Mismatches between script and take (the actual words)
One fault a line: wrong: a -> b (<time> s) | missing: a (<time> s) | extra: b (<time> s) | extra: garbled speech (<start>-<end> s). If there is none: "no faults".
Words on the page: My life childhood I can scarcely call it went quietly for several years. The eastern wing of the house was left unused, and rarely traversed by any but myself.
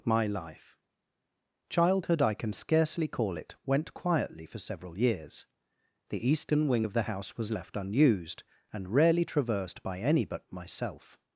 no faults